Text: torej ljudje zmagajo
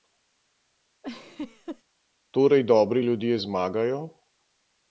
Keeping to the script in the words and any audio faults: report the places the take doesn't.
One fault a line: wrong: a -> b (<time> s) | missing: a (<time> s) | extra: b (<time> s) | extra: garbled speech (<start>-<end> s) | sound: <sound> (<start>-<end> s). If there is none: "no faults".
sound: laugh (1.0-1.8 s)
extra: dobri (2.6 s)